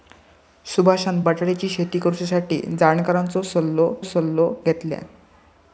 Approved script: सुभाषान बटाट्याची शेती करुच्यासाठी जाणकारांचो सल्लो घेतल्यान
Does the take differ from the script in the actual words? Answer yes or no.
yes